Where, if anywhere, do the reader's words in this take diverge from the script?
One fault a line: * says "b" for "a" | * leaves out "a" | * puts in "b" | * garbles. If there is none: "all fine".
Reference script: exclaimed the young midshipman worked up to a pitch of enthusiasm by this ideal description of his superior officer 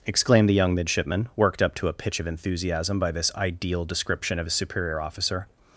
all fine